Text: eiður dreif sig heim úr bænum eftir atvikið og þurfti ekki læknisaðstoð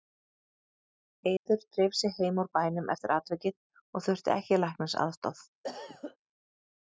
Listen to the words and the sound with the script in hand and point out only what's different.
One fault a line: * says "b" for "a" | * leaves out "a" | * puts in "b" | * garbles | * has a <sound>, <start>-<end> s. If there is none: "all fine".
* has a dropout, 1.4-1.5 s
* has a cough, 5.6-6.2 s